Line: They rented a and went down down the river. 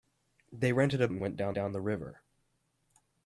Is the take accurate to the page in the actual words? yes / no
yes